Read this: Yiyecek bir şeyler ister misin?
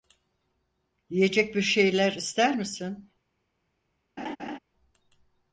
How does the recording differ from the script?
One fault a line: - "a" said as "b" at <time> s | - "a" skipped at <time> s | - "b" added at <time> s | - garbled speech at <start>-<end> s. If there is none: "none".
none